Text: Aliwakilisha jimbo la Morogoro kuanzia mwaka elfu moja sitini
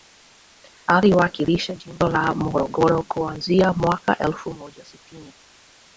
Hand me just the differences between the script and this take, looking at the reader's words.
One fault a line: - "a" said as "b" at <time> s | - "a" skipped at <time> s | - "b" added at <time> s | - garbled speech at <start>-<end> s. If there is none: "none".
none